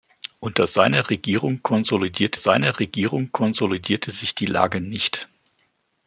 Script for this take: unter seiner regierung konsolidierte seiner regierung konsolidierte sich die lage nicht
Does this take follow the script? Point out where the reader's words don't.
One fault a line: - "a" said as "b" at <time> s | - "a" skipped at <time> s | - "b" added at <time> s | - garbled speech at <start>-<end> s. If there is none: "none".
none